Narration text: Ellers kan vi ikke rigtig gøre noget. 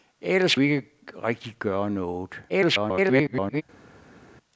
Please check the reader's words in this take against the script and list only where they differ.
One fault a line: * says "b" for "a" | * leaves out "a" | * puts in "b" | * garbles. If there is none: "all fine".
* leaves out "kan"
* garbles